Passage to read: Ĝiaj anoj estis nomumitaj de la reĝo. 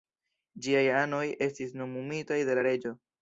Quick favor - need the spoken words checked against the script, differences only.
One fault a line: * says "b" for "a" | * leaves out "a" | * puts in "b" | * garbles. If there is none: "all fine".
all fine